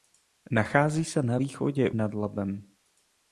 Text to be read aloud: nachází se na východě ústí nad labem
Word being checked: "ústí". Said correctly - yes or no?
no